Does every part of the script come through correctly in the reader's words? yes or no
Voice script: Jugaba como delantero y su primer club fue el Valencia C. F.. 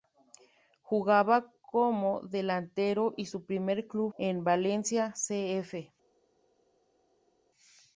no